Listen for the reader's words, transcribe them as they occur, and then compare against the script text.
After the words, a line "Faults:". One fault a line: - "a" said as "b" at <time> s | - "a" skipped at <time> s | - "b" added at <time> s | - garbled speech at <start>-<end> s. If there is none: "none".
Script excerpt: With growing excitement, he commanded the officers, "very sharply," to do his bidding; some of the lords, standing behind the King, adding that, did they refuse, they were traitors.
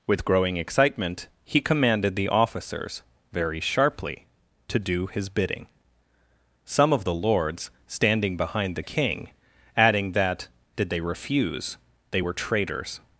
With growing excitement, he commanded the officers, "very sharply," to do his bidding; some of the lords, standing behind the King, adding that, did they refuse, they were traitors.
Faults:
none